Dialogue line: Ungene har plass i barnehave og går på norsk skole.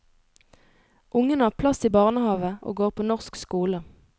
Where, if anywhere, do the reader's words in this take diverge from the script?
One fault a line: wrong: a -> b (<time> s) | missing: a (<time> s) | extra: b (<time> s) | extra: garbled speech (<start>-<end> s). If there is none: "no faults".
no faults